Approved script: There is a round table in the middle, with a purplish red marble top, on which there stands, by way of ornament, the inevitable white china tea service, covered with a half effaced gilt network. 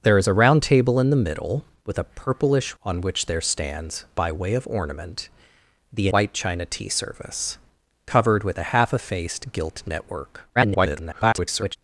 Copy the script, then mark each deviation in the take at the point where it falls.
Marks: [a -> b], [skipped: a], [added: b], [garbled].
There is a round table in the middle, with a purplish [skipped: red marble top,] on which there stands, by way of ornament, the [skipped: inevitable] white china tea service, covered with a half effaced gilt network. [garbled]